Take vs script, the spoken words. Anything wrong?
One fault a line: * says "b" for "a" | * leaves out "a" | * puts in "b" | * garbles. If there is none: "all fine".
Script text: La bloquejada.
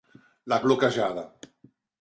all fine